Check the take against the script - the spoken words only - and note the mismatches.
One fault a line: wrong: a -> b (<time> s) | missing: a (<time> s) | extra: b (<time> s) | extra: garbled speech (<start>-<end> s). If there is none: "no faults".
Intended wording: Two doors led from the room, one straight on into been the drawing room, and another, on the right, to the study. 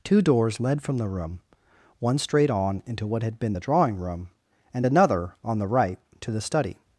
extra: what had (3.0 s)